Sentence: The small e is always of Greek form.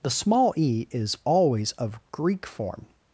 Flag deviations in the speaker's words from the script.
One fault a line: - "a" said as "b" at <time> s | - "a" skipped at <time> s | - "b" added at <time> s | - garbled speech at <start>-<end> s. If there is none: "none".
none